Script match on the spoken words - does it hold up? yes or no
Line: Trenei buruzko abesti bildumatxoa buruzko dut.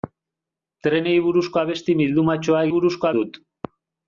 yes